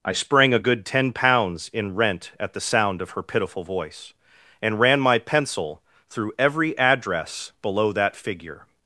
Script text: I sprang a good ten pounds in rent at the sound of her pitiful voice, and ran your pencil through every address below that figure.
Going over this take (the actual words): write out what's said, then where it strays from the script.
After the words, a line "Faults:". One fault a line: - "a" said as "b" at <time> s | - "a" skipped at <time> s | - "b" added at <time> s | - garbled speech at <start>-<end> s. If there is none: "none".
I sprang a good ten pounds in rent at the sound of her pitiful voice, and ran my pencil through every address below that figure.
Faults:
- "your" said as "my" at 5.0 s